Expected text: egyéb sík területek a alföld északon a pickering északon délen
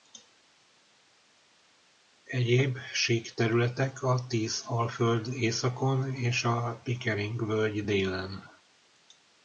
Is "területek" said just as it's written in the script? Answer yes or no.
yes